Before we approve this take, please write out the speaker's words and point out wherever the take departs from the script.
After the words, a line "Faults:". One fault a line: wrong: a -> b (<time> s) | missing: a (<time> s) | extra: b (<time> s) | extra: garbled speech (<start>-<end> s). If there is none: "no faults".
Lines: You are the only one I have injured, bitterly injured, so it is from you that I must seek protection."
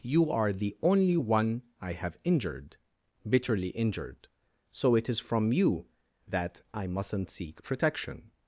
You are the only one I have injured, bitterly injured, so it is from you that I mustn't seek protection."
Faults:
wrong: must -> mustn't (6.9 s)